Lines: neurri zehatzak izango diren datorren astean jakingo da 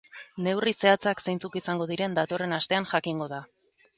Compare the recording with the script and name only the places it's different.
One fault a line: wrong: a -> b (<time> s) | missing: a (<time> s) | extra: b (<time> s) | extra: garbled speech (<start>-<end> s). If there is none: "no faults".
extra: zeintzuk (1.2 s)